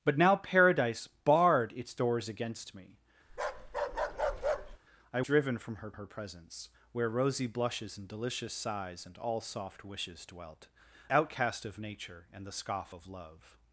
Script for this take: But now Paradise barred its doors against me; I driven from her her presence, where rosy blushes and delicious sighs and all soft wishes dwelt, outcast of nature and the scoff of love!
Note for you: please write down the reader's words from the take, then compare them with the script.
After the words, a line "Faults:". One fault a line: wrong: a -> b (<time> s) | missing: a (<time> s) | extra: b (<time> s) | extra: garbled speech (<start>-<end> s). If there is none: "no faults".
But now Paradise barred its doors against me; I driven from her her presence, where rosy blushes and delicious sighs and all soft wishes dwelt, outcast of nature and the scoff of love!
Faults:
no faults